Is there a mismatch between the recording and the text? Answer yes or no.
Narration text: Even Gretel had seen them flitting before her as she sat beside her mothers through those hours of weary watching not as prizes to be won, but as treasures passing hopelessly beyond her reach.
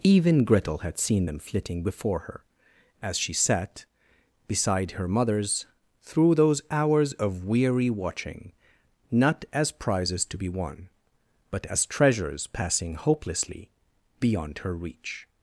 no